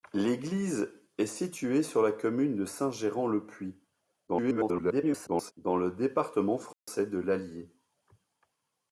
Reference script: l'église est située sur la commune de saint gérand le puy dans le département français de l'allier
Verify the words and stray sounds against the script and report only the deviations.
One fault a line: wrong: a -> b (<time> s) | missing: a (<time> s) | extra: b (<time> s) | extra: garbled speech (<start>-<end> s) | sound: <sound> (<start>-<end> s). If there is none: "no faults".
extra: garbled speech (4.3-5.5 s)
sound: dropout (6.7-6.9 s)